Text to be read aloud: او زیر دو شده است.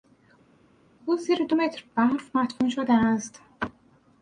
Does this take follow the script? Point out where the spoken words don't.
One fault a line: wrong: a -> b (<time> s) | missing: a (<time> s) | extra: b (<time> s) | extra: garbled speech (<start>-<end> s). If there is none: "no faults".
extra: متر برف مدفون (1.5 s)